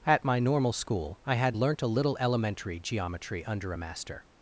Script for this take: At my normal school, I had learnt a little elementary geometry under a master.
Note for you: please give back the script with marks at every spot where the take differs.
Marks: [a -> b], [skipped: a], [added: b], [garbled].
At my normal school, I had learnt a little elementary geometry under a master.